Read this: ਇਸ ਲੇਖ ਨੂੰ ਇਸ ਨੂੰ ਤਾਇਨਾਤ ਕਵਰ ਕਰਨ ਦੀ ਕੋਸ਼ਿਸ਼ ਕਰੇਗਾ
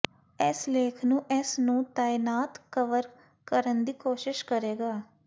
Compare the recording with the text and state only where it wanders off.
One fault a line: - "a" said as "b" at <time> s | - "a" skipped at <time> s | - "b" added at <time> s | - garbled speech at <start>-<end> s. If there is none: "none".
none